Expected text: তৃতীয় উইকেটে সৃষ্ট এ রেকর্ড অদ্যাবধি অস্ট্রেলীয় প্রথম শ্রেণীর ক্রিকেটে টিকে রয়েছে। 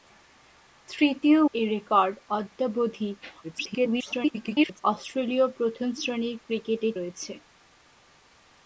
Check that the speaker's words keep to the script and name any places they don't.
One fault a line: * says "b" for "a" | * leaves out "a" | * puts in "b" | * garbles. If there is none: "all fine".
* leaves out "উইকেটে সৃষ্ট"
* garbles
* leaves out "টিকে"